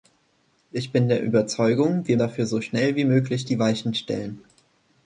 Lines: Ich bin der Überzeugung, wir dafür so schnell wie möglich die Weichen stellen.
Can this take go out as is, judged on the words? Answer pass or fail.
pass